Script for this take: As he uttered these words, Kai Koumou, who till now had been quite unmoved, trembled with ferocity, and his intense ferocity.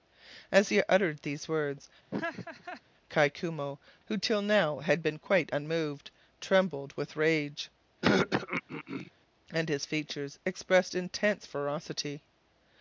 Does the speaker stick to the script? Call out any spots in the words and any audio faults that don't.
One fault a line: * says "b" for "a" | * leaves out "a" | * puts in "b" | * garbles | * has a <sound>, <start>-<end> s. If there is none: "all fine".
* has a laugh, 2.1-2.8 s
* says "rage" for "ferocity"
* has a throat clearing, 8.0-9.1 s
* puts in "features expressed"